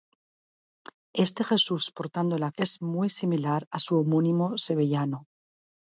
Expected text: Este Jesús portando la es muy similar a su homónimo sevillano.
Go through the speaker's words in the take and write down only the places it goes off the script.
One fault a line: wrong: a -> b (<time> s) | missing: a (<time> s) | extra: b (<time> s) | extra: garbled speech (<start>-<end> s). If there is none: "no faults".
no faults